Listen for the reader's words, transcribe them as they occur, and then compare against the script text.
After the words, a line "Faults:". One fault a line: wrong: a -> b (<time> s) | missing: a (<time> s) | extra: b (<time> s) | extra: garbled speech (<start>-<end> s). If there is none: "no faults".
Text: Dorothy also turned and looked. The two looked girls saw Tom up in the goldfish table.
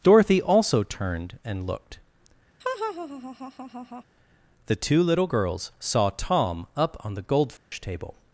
Dorothy also turned and looked. The two little girls saw Tom up on the goldfish table.
Faults:
wrong: looked -> little (5.0 s)
wrong: in -> on (7.0 s)